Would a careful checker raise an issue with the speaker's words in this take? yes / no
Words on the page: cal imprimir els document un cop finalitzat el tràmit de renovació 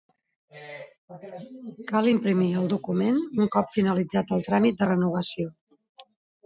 yes